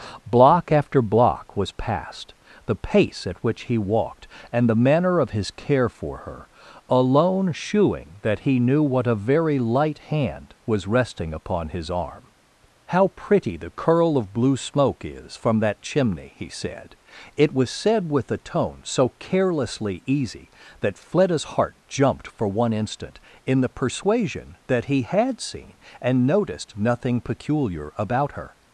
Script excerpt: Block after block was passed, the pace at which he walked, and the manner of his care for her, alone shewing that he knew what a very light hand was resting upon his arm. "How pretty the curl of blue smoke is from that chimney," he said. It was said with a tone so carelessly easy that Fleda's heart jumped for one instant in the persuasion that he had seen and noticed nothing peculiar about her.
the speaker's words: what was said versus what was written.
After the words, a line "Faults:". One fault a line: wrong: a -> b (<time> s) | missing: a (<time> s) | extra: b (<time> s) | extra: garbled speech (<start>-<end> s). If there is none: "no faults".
Block after block was passed, the pace at which he walked, and the manner of his care for her, alone shewing that he knew what a very light hand was resting upon his arm. "How pretty the curl of blue smoke is from that chimney," he said. It was said with a tone so carelessly easy that Fleda's heart jumped for one instant in the persuasion that he had seen and noticed nothing peculiar about her.
Faults:
no faults